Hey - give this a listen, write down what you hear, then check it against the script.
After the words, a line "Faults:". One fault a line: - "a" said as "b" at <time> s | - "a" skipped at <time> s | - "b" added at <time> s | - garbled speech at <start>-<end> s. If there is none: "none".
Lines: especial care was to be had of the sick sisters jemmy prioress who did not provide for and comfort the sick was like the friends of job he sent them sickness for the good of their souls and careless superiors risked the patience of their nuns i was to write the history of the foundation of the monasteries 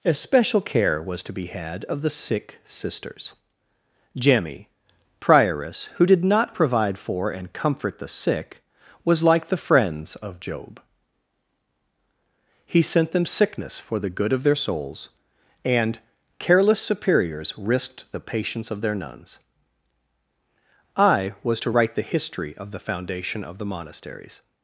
especial care was to be had of the sick sisters jemmy prioress who did not provide for and comfort the sick was like the friends of job he sent them sickness for the good of their souls and careless superiors risked the patience of their nuns i was to write the history of the foundation of the monasteries
Faults:
none